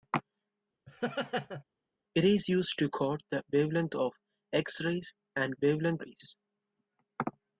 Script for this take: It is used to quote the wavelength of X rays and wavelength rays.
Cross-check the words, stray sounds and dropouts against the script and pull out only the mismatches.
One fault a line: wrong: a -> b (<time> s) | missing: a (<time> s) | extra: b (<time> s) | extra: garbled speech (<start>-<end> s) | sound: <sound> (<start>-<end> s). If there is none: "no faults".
sound: laugh (0.9-1.6 s)